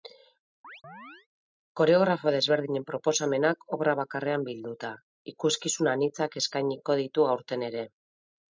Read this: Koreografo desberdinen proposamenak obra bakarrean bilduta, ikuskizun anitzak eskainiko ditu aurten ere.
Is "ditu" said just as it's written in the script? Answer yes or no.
yes